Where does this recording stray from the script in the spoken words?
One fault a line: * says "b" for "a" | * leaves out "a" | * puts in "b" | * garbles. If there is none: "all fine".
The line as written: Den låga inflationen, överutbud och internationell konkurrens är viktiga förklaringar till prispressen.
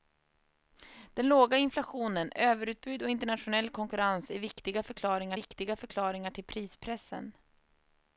* puts in "viktiga förklaringar"